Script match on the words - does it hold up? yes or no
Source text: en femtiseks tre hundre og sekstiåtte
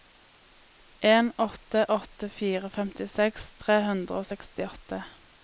no